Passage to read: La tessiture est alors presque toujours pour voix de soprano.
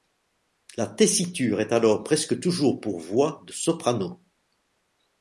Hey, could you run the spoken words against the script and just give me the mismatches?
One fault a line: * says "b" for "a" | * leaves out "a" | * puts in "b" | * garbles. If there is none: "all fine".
all fine